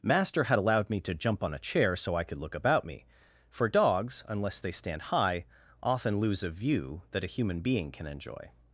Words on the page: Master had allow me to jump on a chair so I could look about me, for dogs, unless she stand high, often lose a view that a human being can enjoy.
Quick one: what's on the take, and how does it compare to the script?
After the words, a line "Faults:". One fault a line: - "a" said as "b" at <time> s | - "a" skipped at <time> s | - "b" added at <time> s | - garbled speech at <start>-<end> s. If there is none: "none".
Master had allowed me to jump on a chair so I could look about me, for dogs, unless they stand high, often lose a view that a human being can enjoy.
Faults:
- "allow" said as "allowed" at 0.6 s
- "she" said as "they" at 4.6 s